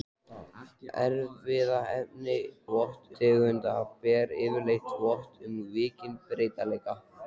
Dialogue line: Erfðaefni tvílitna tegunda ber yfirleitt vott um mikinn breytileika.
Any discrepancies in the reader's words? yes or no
yes